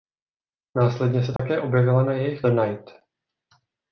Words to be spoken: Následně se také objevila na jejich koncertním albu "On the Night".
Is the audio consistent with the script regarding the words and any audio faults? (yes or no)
no